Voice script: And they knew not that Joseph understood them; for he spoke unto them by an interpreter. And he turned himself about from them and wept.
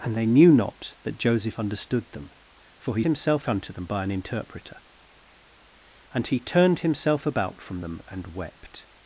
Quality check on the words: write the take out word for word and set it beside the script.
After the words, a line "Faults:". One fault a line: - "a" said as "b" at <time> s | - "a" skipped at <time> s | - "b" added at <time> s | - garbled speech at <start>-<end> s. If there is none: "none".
And they knew not that Joseph understood them; for he himself unto them by an interpreter. And he turned himself about from them and wept.
Faults:
- "spoke" said as "himself" at 3.0 s